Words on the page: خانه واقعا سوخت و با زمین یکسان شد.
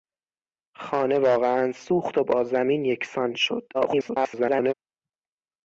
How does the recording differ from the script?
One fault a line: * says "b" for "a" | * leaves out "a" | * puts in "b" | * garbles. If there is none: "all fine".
* garbles